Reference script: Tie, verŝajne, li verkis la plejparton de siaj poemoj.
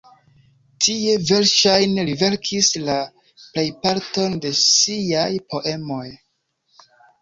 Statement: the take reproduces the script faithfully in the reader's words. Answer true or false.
true